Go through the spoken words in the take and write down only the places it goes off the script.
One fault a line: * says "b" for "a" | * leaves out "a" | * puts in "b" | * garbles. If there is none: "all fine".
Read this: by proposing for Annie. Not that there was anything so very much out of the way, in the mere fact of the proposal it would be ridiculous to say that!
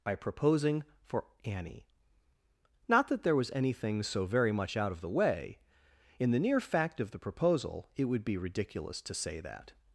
* says "near" for "mere"